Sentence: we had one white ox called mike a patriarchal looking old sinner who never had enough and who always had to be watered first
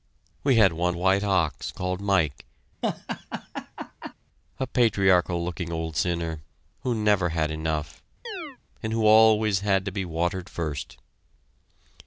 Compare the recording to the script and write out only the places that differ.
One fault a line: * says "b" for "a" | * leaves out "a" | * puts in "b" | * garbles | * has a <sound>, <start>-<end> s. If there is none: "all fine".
* has a laugh, 2.8-4.1 s
* has a chirp, 8.2-8.6 s